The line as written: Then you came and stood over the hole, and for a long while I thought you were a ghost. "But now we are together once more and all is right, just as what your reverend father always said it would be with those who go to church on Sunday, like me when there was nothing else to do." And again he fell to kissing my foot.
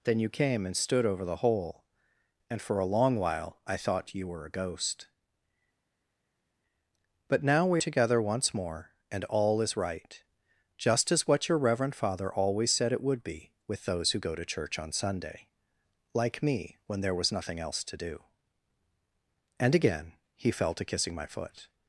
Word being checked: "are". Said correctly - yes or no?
no